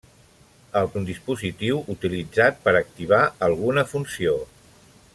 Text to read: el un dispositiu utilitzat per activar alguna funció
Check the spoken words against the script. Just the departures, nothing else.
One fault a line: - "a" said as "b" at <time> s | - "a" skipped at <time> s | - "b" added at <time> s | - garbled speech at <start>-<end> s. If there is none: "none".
none